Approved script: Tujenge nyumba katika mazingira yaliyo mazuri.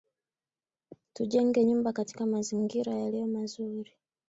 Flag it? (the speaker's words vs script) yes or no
no